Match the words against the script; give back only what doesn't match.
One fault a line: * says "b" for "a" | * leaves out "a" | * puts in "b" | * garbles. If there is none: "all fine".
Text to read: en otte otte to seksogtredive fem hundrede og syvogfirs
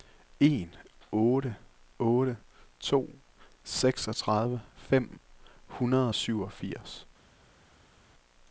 all fine